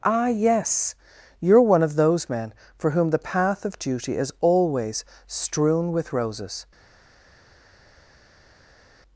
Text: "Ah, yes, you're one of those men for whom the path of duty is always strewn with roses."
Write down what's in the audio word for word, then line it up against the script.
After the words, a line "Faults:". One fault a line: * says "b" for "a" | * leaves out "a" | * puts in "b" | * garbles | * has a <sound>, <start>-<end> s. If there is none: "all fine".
"Ah, yes, you're one of those men for whom the path of duty is always strewn with roses."
Faults:
all fine